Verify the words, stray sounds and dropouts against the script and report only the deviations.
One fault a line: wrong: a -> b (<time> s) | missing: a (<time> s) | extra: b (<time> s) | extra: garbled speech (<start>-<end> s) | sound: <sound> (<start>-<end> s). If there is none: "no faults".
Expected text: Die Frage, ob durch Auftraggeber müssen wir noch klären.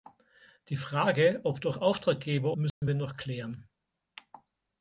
sound: dropout (2.7-2.8 s)